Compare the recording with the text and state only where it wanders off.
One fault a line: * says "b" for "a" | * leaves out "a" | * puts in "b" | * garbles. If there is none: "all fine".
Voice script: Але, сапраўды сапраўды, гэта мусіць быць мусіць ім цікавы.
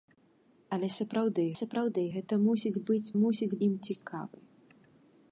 all fine